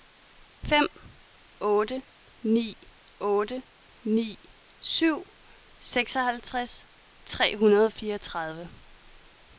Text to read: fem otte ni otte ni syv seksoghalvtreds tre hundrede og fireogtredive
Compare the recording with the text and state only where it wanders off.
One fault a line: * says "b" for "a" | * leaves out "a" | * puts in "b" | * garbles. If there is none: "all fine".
all fine